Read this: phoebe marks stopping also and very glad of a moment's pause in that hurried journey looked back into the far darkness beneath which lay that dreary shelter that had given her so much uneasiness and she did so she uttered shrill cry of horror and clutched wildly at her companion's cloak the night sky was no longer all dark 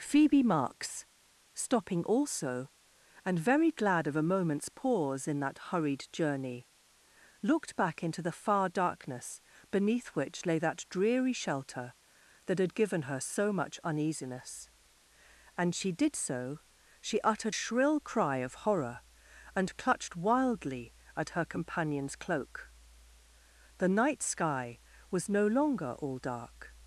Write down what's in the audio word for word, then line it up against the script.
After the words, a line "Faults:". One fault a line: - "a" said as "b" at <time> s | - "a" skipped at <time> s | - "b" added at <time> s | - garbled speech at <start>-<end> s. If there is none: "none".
phoebe marks stopping also and very glad of a moment's pause in that hurried journey looked back into the far darkness beneath which lay that dreary shelter that had given her so much uneasiness and she did so she uttered shrill cry of horror and clutched wildly at her companion's cloak the night sky was no longer all dark
Faults:
none